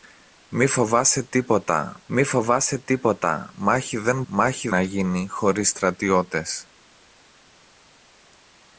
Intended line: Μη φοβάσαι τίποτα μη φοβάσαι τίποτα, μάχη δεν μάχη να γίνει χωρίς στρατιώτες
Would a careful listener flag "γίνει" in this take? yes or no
no